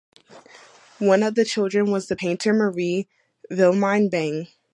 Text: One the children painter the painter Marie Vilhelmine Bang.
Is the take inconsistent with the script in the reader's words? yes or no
yes